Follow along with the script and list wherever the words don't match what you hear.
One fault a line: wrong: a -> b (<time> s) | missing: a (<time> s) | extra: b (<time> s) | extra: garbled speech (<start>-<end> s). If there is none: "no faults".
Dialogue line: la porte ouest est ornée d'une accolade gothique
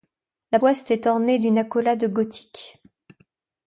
missing: porte (0.6 s)